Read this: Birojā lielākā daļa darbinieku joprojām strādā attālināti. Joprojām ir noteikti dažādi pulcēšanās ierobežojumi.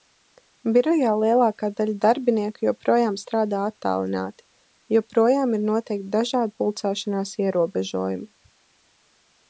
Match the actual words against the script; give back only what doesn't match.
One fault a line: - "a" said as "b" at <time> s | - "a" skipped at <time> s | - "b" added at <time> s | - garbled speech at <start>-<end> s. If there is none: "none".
none